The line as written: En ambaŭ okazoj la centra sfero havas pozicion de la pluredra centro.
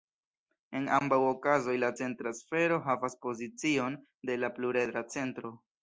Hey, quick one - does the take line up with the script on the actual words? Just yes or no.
yes